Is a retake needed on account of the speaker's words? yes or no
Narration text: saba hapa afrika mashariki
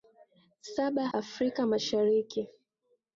yes